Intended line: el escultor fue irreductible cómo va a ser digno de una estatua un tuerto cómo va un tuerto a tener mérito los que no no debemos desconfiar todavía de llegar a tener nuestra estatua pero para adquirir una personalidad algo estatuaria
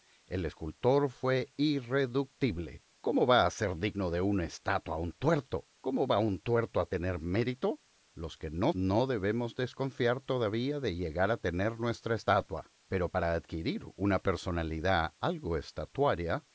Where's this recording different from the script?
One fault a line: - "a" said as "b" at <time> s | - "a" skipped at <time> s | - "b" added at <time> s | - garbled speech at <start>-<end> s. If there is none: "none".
none